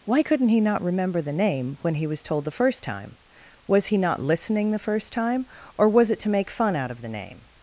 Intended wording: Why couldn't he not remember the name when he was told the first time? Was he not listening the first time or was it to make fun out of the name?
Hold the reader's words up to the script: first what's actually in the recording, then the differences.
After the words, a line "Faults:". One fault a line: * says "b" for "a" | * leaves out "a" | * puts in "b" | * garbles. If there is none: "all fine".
Why couldn't he not remember the name when he was told the first time? Was he not listening the first time or was it to make fun out of the name?
Faults:
all fine